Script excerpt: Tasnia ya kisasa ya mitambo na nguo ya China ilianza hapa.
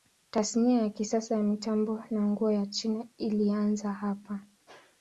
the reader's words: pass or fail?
pass